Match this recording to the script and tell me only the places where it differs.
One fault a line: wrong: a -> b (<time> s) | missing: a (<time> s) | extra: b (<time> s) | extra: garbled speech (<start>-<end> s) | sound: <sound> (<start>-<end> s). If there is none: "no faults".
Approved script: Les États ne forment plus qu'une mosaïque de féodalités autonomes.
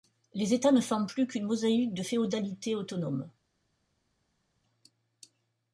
no faults